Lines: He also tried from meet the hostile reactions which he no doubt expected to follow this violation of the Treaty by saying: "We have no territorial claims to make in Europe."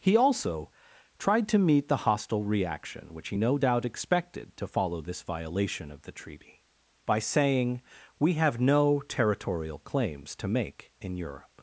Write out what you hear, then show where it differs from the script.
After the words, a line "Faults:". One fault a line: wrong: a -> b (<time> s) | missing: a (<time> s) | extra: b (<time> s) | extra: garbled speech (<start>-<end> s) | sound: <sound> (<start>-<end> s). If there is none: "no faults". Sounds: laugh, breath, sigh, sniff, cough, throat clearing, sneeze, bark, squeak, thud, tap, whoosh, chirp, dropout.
He also tried to meet the hostile reaction which he no doubt expected to follow this violation of the Treaty by saying: "We have no territorial claims to make in Europe."
Faults:
wrong: from -> to (1.5 s)
wrong: reactions -> reaction (2.4 s)